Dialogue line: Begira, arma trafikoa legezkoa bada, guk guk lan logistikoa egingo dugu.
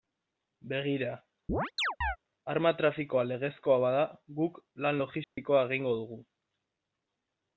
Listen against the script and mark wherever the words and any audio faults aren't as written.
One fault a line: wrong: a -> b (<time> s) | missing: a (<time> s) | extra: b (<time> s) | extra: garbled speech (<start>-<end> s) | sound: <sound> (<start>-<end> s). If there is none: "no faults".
sound: chirp (1.5-2.2 s)
missing: guk (4.6 s)
sound: dropout (5.2-5.4 s)